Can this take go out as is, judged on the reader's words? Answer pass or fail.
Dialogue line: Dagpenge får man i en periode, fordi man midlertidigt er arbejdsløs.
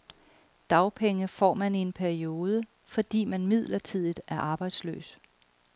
pass